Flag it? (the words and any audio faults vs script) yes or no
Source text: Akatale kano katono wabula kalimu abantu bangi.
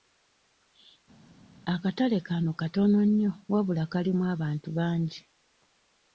yes